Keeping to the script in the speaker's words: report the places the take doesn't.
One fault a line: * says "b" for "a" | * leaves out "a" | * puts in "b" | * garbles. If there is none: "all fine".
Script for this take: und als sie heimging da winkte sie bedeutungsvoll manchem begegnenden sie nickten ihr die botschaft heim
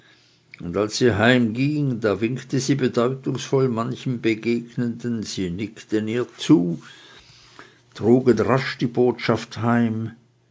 * puts in "zu trugen rasch"